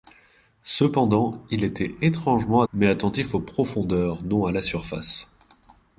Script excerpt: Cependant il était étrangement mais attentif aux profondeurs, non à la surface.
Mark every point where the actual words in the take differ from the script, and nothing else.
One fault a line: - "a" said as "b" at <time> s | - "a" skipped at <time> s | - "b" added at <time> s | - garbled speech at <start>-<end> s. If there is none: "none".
none